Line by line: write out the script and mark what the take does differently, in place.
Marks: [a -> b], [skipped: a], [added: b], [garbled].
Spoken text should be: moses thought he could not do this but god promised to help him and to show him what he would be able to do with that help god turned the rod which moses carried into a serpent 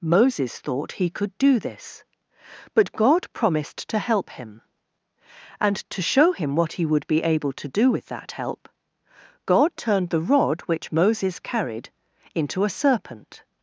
moses thought he could [skipped: not] do this but god promised to help him and to show him what he would be able to do with that help god turned the rod which moses carried into a serpent